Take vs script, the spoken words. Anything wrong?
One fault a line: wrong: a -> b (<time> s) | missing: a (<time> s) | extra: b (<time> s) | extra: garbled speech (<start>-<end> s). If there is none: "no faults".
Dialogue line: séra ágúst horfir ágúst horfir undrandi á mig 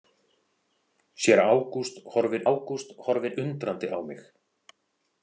no faults